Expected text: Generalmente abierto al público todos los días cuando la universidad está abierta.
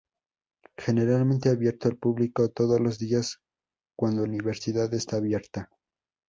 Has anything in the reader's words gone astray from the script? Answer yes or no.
yes